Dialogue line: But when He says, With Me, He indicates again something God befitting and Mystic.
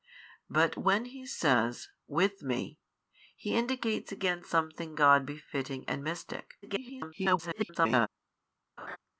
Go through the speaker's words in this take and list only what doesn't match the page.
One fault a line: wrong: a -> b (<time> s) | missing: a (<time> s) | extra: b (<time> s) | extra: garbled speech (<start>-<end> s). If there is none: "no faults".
extra: garbled speech (6.6-8.1 s)